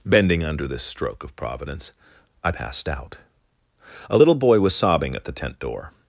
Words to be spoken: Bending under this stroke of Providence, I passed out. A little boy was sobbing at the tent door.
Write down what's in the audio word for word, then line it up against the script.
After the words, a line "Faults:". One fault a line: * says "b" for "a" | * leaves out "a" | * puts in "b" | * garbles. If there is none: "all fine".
Bending under this stroke of Providence, I passed out. A little boy was sobbing at the tent door.
Faults:
all fine